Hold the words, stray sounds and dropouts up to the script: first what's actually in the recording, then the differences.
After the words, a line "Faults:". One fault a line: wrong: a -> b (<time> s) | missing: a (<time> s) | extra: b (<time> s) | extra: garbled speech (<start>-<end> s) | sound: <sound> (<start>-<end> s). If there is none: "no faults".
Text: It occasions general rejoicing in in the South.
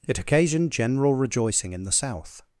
It occasioned general rejoicing in the South.
Faults:
wrong: occasions -> occasioned (0.2 s)
missing: in (1.8 s)